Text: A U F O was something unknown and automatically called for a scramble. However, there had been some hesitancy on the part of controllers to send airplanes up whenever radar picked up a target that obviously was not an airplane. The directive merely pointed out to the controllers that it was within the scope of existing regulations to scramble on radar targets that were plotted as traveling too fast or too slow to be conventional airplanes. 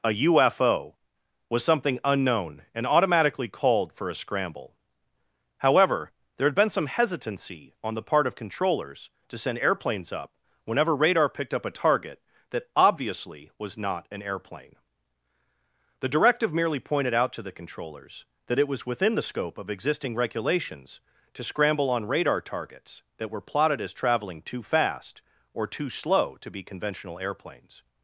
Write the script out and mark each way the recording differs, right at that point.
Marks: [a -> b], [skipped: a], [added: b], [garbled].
A U F O was something unknown and automatically called for a scramble. However, there had been some hesitancy on the part of controllers to send airplanes up whenever radar picked up a target that obviously was not an airplane. The directive merely pointed out to the controllers that it was within the scope of existing regulations to scramble on radar targets that were plotted as traveling too fast or too slow to be conventional airplanes.